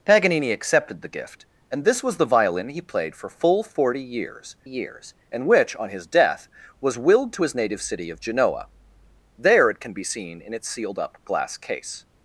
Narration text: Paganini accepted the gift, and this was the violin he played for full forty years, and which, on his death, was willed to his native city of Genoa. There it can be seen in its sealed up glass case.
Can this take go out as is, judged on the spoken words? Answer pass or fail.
fail